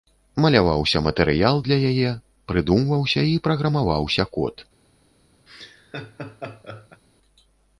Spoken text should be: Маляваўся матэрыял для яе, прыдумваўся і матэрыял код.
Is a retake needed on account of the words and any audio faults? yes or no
yes